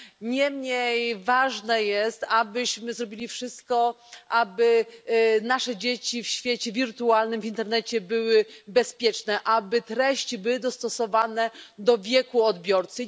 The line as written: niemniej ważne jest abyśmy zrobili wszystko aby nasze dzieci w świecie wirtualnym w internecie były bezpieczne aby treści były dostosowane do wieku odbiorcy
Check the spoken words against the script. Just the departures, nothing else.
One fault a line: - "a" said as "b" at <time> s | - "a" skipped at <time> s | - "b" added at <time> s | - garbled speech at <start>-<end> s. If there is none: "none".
none